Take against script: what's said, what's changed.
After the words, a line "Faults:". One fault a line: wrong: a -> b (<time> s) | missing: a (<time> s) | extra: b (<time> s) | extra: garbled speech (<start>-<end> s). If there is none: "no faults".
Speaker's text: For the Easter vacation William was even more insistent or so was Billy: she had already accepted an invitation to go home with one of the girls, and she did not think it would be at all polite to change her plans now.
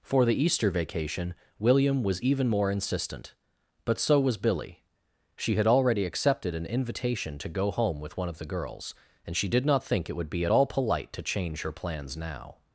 For the Easter vacation William was even more insistent but so was Billy: she had already accepted an invitation to go home with one of the girls, and she did not think it would be at all polite to change her plans now.
Faults:
wrong: or -> but (3.8 s)